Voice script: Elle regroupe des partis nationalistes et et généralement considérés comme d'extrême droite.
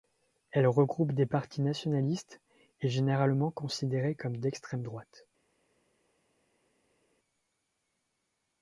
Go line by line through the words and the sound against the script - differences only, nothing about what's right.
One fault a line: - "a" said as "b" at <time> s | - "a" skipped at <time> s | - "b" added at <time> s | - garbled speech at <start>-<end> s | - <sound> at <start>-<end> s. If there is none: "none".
- "et" skipped at 2.9 s